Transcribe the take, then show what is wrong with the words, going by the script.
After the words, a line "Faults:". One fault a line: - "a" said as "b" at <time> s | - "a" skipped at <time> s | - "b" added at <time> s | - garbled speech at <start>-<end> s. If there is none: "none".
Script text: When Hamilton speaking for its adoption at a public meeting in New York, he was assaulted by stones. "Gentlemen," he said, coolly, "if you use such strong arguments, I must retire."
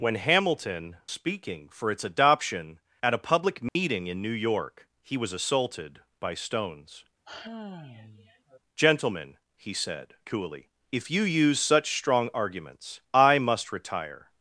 When Hamilton speaking for its adoption at a public meeting in New York, he was assaulted by stones. "Gentlemen," he said, coolly, "if you use such strong arguments, I must retire."
Faults:
none